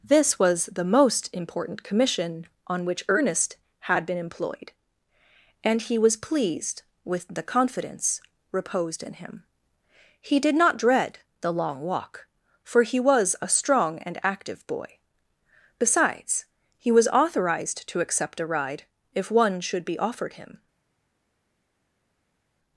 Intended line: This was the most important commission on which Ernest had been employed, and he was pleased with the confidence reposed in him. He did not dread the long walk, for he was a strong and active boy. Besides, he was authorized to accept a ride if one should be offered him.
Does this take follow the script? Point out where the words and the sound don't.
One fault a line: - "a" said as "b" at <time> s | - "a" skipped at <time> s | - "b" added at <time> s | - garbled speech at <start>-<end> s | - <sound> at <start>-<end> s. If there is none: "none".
none